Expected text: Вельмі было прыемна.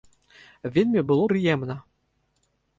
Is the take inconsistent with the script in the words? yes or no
no